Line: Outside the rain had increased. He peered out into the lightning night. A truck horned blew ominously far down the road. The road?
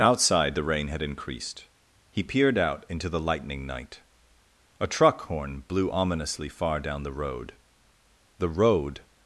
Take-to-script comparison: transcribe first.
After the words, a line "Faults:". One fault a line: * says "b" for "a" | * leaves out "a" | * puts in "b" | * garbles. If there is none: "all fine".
Outside the rain had increased. He peered out into the lightning night. A truck horn blew ominously far down the road. The road?
Faults:
* says "horn" for "horned"